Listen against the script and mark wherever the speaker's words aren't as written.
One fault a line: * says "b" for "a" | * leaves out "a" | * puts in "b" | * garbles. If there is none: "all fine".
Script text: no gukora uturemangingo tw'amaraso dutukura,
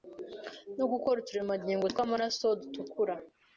all fine